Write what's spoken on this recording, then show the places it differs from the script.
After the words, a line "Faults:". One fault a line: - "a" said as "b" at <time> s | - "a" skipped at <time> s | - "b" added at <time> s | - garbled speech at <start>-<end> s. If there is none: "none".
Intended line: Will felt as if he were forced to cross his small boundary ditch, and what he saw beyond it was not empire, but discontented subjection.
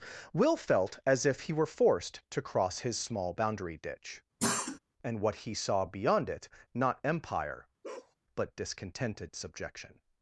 Will felt as if he were forced to cross his small boundary ditch, and what he saw beyond it not empire, but discontented subjection.
Faults:
- "was" skipped at 6.5 s